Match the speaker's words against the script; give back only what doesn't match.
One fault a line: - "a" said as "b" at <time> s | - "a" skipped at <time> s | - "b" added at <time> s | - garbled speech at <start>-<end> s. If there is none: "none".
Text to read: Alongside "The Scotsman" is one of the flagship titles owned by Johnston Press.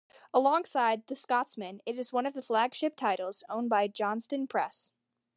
- "it" added at 1.9 s